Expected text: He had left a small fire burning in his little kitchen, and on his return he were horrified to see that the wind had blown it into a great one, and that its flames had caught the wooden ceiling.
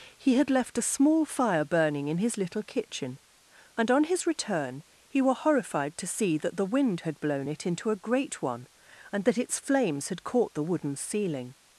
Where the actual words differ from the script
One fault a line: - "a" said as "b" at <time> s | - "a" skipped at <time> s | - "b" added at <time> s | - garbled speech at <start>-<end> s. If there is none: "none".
none